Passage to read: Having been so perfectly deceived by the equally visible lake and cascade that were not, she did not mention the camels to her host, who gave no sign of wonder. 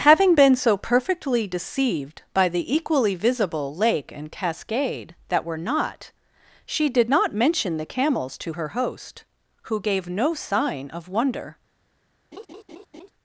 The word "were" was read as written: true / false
true